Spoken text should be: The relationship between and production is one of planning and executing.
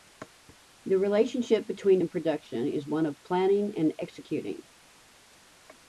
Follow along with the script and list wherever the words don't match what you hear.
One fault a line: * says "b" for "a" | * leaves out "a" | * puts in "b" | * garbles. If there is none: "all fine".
all fine